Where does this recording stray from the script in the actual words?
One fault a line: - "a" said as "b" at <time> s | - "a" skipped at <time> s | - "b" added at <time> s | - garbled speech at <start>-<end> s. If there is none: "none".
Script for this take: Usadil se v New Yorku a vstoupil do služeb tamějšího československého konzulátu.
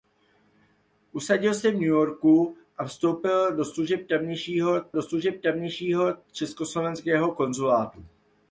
- "do služeb tamějšího" added at 4.9 s